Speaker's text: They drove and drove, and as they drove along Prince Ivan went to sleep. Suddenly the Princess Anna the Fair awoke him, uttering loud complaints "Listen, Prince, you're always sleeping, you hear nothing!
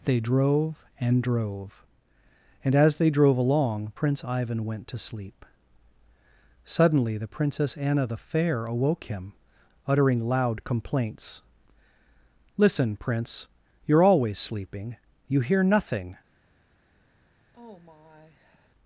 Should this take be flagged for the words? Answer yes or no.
no